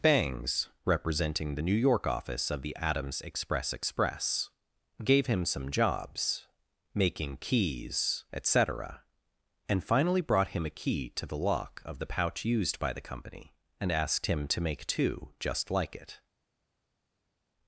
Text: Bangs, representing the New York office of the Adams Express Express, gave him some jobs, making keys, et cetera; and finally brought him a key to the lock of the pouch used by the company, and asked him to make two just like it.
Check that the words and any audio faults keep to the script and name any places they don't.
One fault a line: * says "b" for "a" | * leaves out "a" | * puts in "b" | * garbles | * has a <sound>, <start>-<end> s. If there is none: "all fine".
all fine